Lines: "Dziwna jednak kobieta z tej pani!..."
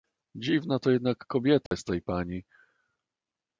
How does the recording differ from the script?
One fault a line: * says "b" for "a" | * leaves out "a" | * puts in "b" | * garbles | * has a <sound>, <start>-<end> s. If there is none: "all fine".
* puts in "to"
* has a dropout, 1.7-1.7 s